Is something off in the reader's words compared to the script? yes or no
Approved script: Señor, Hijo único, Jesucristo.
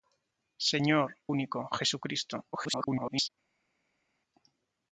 yes